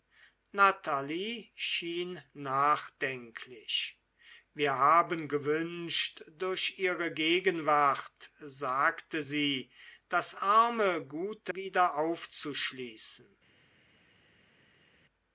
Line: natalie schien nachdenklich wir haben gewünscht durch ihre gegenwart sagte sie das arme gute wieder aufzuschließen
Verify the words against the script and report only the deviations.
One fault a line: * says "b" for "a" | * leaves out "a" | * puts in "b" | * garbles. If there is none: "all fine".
all fine